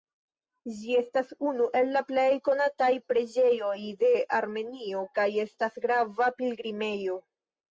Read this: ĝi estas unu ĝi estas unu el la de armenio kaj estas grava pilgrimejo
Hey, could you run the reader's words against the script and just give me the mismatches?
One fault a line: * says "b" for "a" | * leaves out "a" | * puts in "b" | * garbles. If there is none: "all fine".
* says "el la plej konataj preĝejoj" for "ĝi estas unu el la"